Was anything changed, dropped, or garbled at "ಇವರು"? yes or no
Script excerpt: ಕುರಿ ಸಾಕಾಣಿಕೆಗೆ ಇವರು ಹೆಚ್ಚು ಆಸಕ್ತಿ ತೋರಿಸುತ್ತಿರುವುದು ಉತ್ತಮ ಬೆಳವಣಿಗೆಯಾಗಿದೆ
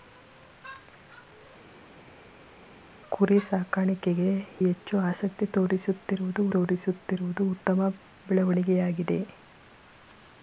yes